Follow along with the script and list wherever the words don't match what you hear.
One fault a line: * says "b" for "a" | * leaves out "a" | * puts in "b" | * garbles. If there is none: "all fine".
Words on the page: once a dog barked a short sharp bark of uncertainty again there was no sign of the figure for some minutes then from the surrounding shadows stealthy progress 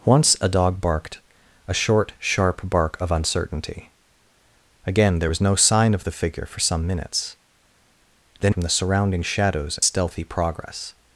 all fine